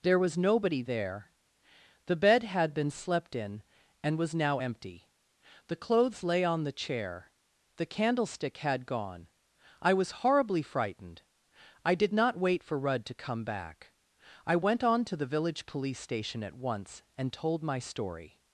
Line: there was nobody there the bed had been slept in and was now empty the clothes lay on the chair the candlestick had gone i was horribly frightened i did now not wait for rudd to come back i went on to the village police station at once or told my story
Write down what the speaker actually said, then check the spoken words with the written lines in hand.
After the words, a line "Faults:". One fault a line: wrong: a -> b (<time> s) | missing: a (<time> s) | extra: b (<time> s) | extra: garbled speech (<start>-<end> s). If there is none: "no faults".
there was nobody there the bed had been slept in and was now empty the clothes lay on the chair the candlestick had gone i was horribly frightened i did not wait for rudd to come back i went on to the village police station at once and told my story
Faults:
missing: now (12.1 s)
wrong: or -> and (17.2 s)